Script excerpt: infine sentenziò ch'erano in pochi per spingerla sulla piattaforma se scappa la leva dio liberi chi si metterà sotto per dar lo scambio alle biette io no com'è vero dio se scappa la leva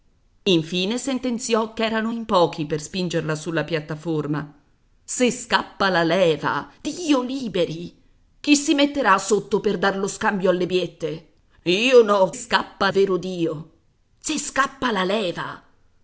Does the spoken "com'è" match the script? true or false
false